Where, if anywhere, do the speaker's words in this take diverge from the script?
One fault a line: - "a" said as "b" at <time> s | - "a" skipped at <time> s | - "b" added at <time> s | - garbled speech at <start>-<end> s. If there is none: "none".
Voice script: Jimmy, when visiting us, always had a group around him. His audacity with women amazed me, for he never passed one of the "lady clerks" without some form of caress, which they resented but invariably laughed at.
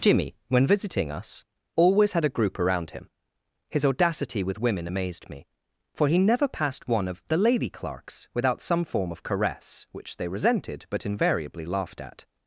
none